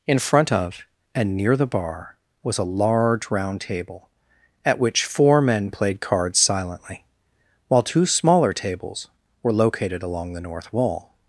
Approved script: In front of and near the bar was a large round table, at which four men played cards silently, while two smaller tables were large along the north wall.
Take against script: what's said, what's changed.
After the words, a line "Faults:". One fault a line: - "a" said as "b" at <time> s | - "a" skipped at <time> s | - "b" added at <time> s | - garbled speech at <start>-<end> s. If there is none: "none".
In front of and near the bar was a large round table, at which four men played cards silently, while two smaller tables were located along the north wall.
Faults:
- "large" said as "located" at 9.5 s